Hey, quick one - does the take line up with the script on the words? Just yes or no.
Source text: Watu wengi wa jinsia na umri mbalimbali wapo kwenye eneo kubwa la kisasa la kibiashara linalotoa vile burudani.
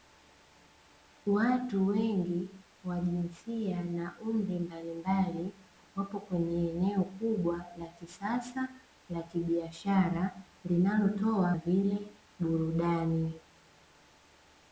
yes